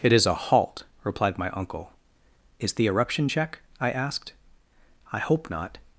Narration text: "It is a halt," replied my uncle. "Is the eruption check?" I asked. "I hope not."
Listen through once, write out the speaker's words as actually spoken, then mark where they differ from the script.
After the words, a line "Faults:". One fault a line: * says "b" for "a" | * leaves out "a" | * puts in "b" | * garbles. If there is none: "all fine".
"It is a halt," replied my uncle. "Is the eruption check?" I asked. "I hope not."
Faults:
all fine